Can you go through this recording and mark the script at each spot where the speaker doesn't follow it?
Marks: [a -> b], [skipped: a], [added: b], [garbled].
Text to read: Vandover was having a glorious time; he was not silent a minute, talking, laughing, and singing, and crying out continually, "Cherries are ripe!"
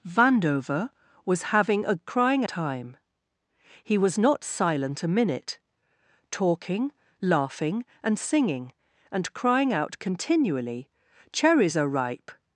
Vandover was having a [glorious -> crying] time; he was not silent a minute, talking, laughing, and singing, and crying out continually, "Cherries are ripe!"